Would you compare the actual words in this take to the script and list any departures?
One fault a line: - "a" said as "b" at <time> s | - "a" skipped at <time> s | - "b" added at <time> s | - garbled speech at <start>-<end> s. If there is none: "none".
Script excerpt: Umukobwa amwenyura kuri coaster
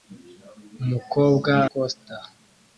- "amwenyura kuri" skipped at 1.5 s